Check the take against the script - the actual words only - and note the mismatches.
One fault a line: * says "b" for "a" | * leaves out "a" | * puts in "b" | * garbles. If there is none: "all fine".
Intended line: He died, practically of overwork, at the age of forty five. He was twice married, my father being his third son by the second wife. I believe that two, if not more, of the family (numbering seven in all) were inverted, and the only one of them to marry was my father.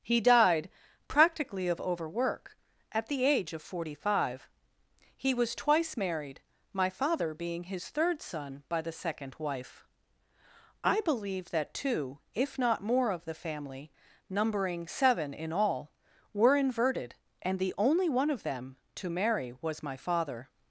all fine